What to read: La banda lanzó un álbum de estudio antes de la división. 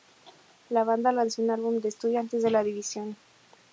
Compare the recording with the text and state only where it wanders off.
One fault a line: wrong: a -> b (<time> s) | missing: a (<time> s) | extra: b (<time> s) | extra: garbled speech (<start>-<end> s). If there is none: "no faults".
no faults